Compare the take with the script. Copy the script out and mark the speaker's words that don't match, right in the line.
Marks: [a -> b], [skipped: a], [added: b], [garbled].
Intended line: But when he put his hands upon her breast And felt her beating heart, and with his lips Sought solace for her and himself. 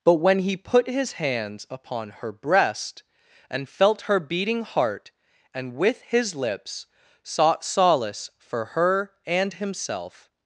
But when he put his hands upon her breast And felt her beating heart, and with his lips Sought solace for her and himself.